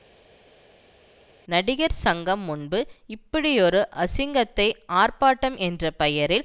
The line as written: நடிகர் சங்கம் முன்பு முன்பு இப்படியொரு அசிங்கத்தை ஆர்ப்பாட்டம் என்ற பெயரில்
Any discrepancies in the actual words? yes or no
yes